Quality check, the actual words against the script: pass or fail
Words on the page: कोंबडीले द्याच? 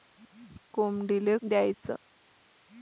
pass